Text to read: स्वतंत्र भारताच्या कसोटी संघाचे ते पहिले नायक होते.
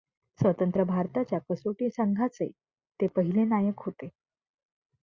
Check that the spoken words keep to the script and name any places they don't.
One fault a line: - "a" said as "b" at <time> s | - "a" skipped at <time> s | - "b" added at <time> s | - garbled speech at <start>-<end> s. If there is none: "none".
none